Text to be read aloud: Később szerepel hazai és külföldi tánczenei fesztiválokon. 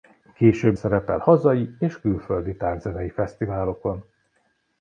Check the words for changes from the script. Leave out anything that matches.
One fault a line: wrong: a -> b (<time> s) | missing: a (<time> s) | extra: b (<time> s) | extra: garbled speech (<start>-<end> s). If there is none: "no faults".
no faults